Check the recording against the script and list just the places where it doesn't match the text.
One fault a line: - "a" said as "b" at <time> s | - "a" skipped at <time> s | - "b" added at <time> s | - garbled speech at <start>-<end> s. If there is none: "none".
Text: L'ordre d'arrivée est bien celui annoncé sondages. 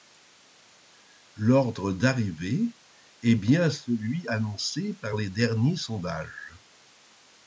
- "par les derniers" added at 4.9 s